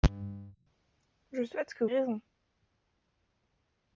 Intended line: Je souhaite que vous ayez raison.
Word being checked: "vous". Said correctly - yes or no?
no